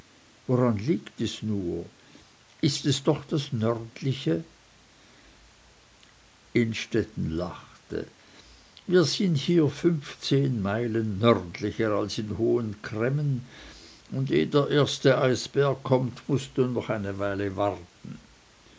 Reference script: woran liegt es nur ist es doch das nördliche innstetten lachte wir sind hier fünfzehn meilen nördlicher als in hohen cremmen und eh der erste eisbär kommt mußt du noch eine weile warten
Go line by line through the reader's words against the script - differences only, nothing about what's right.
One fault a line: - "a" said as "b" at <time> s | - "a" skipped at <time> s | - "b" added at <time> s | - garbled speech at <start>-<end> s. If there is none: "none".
none